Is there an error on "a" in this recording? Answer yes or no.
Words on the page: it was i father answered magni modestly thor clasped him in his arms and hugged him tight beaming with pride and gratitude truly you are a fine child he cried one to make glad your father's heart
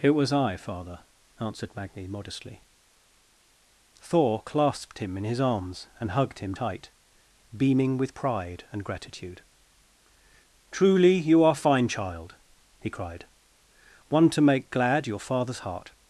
yes